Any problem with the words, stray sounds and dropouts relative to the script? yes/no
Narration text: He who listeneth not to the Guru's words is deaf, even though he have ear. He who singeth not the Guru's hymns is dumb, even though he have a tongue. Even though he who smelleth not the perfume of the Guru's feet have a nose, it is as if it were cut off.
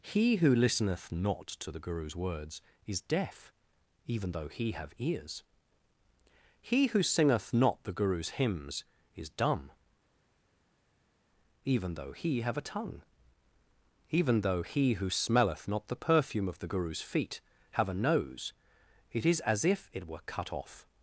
yes